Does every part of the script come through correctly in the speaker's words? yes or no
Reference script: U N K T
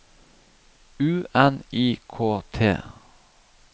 no